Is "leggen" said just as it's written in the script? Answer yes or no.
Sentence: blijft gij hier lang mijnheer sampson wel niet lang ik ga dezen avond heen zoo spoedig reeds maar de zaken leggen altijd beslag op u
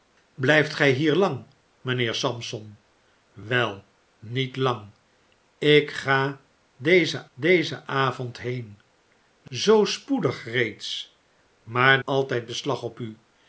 no